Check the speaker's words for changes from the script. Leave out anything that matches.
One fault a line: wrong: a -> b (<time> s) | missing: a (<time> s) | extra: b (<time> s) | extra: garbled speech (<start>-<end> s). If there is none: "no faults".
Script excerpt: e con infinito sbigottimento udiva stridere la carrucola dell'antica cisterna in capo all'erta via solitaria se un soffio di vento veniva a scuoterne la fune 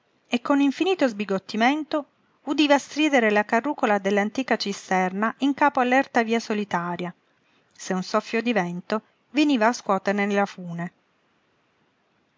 no faults